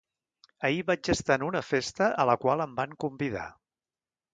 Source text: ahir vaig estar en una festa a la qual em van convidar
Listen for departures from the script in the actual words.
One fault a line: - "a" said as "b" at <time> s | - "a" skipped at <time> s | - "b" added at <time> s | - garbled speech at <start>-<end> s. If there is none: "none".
none